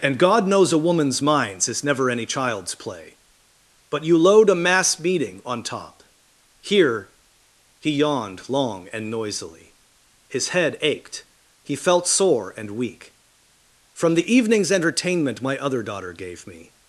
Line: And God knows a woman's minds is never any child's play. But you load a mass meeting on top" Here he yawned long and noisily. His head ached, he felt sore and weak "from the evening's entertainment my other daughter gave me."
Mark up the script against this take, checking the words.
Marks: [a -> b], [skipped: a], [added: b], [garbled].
And God knows a woman's minds is never any child's play. But you load a mass meeting on top" Here he yawned long and noisily. His head ached, he felt sore and weak "from the evening's entertainment my other daughter gave me."